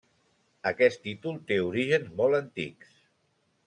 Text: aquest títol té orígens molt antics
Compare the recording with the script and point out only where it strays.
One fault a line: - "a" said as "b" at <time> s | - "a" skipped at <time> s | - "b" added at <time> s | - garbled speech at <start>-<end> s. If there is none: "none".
none